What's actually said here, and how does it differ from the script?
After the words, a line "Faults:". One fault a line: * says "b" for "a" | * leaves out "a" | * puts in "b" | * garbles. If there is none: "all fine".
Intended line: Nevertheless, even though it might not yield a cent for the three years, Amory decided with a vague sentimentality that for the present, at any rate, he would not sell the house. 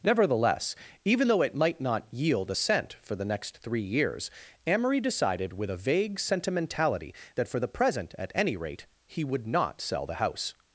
Nevertheless, even though it might not yield a cent for the next three years, Amory decided with a vague sentimentality that for the present, at any rate, he would not sell the house.
Faults:
* puts in "next"